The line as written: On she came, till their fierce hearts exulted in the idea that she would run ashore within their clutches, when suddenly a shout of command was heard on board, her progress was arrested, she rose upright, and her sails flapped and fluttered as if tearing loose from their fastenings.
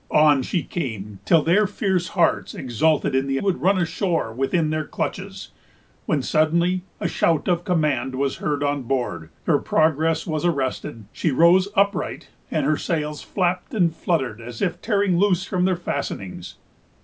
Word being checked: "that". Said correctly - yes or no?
no